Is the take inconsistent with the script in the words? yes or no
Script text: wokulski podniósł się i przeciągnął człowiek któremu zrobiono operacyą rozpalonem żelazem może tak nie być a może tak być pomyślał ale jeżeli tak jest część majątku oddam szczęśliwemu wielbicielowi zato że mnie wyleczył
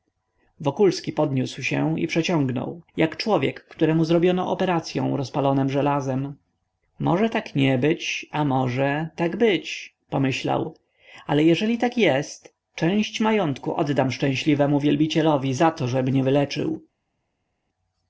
yes